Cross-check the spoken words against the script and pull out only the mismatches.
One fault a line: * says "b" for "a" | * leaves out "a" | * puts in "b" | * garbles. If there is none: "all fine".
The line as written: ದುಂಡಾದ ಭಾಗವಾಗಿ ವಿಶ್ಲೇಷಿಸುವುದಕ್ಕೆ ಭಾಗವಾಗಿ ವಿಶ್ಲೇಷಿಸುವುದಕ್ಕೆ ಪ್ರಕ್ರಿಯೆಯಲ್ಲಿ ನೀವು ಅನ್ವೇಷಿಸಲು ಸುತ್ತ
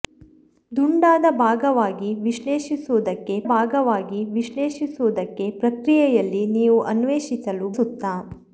all fine